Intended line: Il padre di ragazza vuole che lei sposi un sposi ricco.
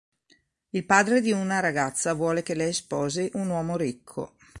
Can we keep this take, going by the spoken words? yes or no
no